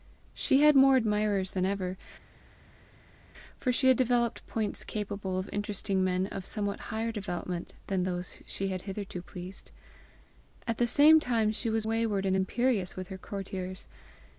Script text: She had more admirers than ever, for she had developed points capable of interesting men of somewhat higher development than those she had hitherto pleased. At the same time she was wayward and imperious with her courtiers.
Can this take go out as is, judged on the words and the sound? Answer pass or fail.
pass